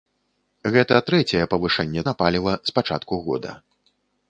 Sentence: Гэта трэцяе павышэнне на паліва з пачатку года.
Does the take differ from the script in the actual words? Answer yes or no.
no